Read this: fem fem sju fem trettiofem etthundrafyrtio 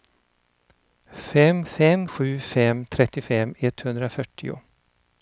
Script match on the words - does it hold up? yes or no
yes